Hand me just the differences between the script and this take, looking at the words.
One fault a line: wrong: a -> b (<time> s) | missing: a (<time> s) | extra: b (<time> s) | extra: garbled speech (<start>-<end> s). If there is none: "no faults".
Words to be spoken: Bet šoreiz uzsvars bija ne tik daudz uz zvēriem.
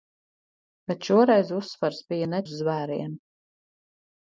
missing: tik daudz (2.4 s)